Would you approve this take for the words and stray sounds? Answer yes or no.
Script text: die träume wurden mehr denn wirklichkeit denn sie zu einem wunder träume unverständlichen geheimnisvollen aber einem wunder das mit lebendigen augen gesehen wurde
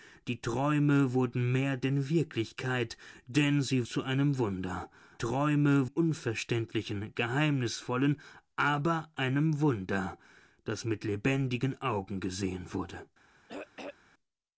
no